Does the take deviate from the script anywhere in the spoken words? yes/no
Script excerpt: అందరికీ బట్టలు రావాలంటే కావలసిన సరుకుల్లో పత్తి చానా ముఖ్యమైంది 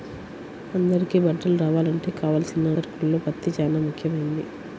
no